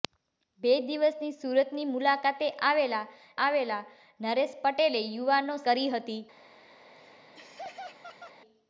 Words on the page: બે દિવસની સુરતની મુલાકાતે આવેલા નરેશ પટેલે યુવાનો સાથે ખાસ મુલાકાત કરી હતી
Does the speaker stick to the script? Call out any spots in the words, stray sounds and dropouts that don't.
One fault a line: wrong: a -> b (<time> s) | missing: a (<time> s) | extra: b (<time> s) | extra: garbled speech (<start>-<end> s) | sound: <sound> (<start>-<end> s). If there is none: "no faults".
extra: આવેલા (3.5 s)
missing: સાથે ખાસ મુલાકાત (5.6 s)
sound: laugh (6.8-8.4 s)